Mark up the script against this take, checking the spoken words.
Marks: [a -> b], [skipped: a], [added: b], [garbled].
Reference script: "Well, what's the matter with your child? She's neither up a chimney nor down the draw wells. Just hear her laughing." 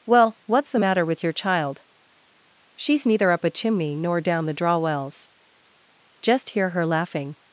"Well, what's the matter with your child? She's neither up a chimney nor down the draw wells. Just hear her laughing."